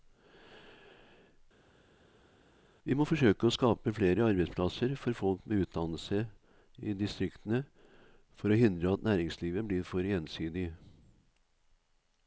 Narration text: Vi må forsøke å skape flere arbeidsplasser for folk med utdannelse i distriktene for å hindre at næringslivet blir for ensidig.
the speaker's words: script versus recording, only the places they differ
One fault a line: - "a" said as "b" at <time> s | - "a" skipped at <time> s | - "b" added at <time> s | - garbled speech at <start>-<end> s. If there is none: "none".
none